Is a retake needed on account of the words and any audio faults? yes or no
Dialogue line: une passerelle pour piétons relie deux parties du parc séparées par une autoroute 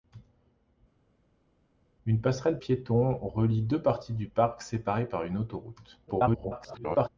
yes